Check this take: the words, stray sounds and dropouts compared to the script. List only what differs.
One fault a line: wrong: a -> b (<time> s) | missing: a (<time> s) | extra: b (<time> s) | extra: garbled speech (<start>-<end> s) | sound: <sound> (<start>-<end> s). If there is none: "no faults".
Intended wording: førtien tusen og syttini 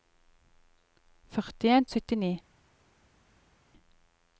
missing: tusen (1.9 s)